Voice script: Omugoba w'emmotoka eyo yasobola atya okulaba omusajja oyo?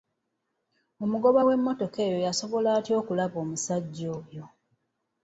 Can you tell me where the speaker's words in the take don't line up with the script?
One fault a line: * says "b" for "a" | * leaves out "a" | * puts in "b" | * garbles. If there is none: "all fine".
all fine